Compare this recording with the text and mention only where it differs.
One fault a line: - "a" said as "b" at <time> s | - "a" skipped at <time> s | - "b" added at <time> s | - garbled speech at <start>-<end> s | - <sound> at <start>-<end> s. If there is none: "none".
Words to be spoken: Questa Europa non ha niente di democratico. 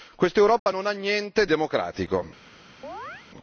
- dropout at 0.6-0.7 s
- "di" skipped at 1.5 s
- chirp at 2.8-3.3 s